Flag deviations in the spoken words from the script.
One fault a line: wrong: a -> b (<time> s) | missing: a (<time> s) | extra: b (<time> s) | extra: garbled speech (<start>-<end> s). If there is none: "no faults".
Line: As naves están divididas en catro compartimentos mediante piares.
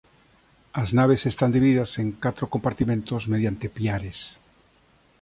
no faults